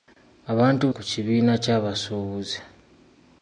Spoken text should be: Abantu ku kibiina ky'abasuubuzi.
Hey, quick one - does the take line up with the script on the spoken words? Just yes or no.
yes